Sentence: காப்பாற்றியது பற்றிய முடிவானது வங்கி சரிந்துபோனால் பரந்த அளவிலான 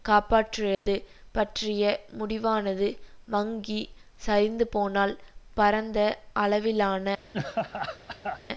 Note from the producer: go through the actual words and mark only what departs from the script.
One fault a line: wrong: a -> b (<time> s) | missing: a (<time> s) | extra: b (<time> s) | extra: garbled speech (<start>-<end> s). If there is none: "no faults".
no faults